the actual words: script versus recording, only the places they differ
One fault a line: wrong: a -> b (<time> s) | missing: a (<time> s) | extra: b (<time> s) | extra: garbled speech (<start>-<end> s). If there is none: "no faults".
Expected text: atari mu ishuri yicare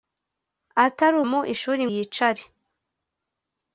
no faults